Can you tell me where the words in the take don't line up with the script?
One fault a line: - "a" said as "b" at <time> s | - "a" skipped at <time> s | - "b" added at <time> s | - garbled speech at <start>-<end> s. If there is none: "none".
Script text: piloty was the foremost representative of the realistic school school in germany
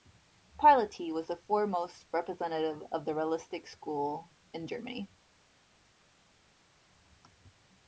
- "school" skipped at 4.3 s